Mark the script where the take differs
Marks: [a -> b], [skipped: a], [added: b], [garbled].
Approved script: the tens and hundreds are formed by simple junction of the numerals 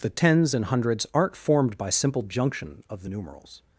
the tens and hundreds [are -> aren't] formed by simple junction of the numerals